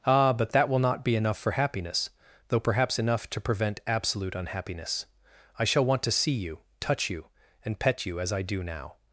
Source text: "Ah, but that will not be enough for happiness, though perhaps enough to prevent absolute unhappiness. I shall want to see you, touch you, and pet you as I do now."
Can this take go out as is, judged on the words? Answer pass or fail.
pass